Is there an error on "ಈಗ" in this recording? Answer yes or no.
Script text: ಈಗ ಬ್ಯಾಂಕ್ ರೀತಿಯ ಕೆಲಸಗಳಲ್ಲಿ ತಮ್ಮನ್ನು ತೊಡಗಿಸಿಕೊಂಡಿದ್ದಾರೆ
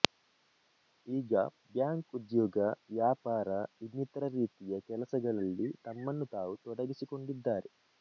no